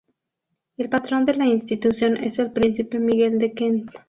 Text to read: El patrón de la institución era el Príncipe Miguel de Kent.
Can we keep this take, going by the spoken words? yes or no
no